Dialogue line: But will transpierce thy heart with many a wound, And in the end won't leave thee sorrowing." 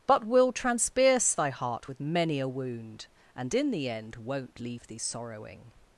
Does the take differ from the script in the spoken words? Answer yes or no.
no